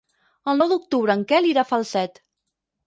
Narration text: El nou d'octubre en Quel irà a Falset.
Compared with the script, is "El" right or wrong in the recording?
right